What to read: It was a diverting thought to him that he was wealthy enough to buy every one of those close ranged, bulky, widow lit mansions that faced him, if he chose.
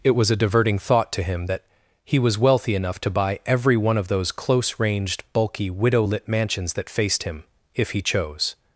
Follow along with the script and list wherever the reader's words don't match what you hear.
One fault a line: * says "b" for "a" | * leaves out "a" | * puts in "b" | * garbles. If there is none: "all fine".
all fine